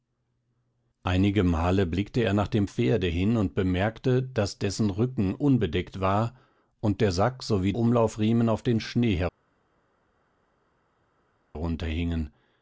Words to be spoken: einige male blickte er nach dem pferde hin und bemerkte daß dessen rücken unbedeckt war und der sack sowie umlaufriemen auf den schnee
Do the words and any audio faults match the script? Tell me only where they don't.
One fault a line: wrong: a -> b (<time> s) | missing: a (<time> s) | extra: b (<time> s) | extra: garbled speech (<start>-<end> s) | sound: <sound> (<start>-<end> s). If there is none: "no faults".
no faults